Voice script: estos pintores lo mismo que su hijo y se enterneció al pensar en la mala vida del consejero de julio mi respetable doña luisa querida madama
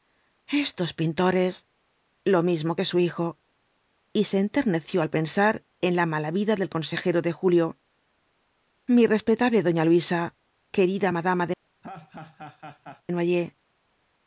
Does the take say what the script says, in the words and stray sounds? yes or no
no